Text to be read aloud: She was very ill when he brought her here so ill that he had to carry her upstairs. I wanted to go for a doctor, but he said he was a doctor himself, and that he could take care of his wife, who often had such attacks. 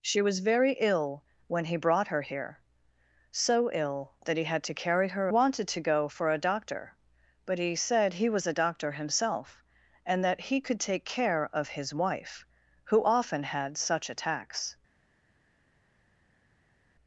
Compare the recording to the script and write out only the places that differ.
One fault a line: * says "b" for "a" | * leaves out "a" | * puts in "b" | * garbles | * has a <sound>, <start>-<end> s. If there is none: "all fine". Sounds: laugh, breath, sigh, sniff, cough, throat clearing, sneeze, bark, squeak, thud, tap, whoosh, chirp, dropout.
* leaves out "upstairs I"